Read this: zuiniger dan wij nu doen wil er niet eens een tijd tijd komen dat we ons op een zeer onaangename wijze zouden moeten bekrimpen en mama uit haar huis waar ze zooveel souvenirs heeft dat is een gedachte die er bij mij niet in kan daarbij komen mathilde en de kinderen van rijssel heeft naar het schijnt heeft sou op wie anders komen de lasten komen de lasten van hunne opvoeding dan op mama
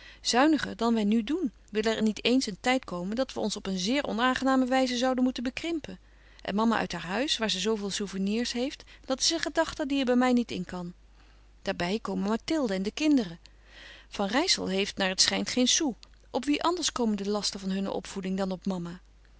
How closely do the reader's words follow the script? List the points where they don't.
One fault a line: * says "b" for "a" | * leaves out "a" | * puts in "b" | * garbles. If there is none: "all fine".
* leaves out "tijd"
* says "geen" for "heeft"
* leaves out "komen de lasten"